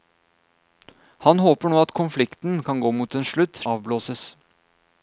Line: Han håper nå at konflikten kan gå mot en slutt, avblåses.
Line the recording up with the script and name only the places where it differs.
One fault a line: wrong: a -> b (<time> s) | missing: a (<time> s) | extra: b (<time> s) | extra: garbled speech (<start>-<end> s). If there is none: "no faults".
no faults